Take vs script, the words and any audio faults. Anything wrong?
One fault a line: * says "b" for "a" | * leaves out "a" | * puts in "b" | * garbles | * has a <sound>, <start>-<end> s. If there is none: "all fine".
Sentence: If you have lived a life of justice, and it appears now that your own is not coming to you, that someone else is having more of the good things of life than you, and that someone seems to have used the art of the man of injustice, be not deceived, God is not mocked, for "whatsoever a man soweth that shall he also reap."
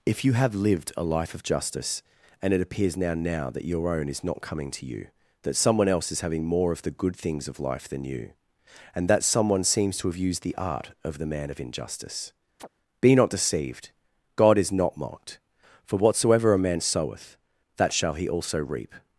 * puts in "now"
* has a chirp, 12.6-12.7 s